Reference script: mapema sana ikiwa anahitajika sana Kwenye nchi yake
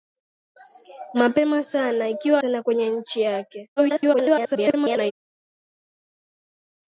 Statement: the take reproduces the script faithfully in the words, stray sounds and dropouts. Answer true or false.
false